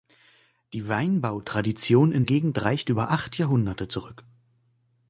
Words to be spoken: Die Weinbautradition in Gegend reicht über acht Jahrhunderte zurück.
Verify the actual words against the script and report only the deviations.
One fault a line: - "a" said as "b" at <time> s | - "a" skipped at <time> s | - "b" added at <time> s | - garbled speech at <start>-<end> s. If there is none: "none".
none